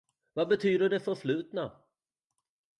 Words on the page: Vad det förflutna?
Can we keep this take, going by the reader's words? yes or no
no